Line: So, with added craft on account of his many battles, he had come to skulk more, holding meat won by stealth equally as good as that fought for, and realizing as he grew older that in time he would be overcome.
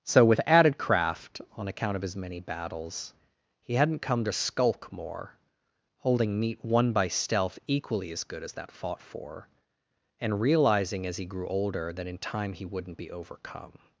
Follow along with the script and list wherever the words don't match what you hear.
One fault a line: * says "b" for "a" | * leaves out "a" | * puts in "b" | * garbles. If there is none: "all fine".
* says "hadn't" for "had"
* says "wouldn't" for "would"